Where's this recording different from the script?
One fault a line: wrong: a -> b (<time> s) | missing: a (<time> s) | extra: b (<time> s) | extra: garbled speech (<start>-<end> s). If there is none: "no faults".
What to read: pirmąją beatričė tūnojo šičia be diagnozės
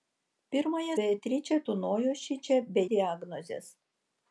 no faults